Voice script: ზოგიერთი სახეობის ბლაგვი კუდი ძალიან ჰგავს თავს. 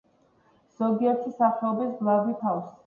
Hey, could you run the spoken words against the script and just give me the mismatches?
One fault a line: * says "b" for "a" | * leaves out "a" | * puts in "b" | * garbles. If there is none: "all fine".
* leaves out "კუდი ძალიან ჰგავს"